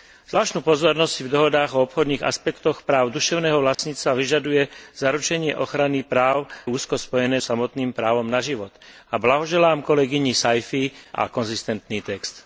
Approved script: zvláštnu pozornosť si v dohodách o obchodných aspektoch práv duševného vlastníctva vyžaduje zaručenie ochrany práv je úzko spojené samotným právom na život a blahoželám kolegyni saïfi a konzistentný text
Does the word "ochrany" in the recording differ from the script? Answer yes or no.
no